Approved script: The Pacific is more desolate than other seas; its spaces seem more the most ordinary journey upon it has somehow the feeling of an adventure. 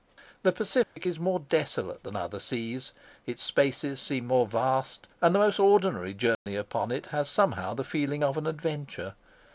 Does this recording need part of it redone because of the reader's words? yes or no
yes